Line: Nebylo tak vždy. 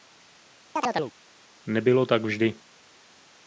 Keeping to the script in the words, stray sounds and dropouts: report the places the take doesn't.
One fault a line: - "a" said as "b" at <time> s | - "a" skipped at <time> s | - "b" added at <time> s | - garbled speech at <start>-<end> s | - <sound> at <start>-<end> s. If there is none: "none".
- chirp at 0.8-1.1 s